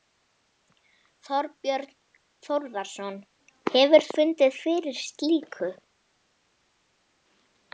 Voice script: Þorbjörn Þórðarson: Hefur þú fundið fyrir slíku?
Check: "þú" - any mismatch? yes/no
yes